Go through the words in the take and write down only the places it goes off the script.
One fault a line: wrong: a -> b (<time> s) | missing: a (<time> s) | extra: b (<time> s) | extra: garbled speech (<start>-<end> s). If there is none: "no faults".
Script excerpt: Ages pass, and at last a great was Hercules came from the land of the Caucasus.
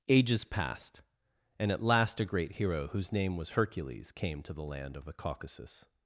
wrong: pass -> passed (0.4 s)
extra: hero whose name (2.5 s)
wrong: from -> to (4.4 s)